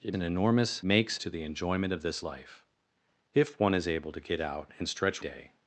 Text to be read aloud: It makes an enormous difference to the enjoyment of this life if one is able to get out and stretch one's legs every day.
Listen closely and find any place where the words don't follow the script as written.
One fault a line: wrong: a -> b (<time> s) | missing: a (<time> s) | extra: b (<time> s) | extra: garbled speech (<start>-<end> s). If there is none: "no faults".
missing: makes (0.1 s)
wrong: difference -> makes (0.8 s)
missing: one's legs every (5.2 s)